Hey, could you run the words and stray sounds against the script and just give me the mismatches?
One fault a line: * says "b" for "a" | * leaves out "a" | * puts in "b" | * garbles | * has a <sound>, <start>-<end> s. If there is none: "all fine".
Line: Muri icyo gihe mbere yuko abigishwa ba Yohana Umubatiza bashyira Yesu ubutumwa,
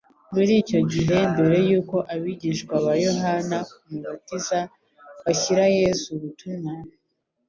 all fine